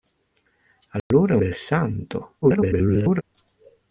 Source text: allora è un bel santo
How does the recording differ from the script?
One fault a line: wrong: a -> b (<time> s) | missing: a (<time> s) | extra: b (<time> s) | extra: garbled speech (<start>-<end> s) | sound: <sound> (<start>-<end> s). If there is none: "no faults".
sound: dropout (1.0-1.1 s)
missing: un (1.4 s)
extra: garbled speech (2.4-3.2 s)